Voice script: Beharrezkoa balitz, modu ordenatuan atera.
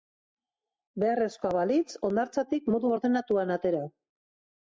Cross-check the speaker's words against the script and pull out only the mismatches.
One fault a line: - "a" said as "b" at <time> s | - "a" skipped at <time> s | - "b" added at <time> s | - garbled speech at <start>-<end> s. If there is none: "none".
- "hondartzatik" added at 2.1 s